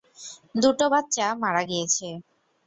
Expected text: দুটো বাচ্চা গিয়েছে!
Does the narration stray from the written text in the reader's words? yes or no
yes